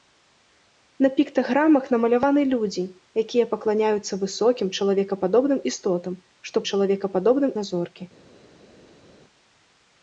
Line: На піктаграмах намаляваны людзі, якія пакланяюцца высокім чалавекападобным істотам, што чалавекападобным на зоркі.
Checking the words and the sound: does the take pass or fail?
pass